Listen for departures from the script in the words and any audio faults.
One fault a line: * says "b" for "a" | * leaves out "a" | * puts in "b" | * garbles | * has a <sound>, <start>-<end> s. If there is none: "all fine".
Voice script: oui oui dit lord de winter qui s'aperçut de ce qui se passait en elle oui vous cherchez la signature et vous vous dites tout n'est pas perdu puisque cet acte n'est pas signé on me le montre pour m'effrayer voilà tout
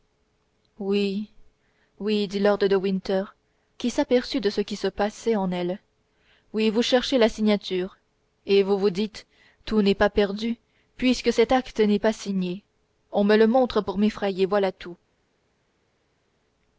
all fine